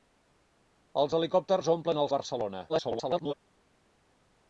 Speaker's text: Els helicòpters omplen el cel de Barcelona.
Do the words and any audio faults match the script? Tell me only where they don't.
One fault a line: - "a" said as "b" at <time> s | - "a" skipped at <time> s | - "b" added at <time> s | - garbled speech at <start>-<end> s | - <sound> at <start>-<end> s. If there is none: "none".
- "cel" skipped at 2.1 s
- garbled speech at 2.7-3.3 s